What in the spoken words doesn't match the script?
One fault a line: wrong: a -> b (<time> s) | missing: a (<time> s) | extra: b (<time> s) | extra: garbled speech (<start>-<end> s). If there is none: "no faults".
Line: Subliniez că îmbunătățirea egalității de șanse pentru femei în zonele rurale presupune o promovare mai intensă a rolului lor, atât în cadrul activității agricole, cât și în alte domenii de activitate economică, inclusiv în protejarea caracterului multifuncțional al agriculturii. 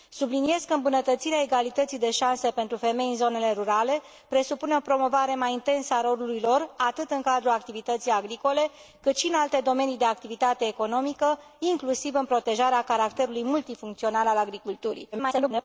extra: garbled speech (15.1-15.6 s)